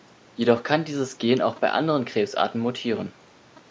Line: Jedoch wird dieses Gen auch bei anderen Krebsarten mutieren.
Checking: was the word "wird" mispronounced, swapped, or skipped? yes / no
yes